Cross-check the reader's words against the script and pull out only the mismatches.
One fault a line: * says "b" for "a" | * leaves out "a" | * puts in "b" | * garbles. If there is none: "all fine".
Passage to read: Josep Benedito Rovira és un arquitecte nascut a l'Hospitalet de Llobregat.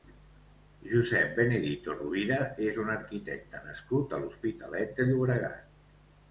all fine